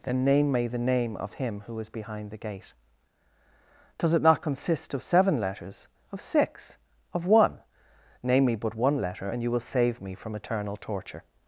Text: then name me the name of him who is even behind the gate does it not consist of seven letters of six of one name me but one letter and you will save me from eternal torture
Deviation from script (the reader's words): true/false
true